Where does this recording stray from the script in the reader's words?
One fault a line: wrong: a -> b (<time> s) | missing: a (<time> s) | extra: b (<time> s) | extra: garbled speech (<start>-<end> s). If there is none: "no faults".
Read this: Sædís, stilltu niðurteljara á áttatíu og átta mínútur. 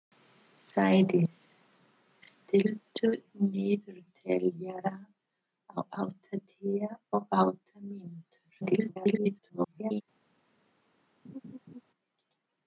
extra: garbled speech (8.6-10.0 s)